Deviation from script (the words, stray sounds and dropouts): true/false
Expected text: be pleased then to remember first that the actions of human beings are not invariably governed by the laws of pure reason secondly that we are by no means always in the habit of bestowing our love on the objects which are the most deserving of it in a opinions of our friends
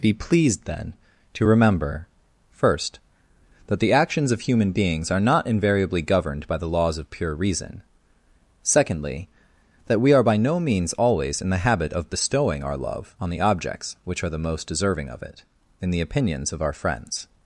true